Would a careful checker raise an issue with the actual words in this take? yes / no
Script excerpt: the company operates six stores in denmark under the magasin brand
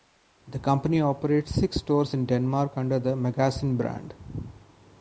no